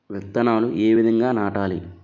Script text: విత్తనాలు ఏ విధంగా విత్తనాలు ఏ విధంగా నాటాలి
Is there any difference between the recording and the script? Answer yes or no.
yes